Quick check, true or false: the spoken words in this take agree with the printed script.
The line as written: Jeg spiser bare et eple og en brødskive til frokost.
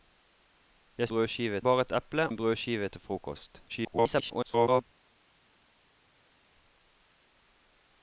false